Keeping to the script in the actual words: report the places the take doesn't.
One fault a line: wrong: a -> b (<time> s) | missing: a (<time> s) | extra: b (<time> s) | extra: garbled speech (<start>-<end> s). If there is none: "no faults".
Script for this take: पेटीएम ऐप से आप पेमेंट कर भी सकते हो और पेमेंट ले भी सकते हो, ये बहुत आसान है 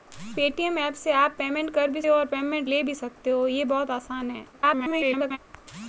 missing: सकते (2.0 s)
extra: garbled speech (4.5-5.4 s)